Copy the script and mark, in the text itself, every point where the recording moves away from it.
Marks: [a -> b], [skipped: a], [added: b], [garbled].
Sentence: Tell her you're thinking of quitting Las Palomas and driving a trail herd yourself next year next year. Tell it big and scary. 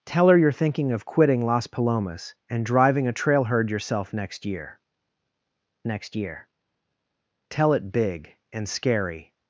Tell her you're thinking of quitting Las Palomas and driving a trail herd yourself next year next year. Tell it big and scary.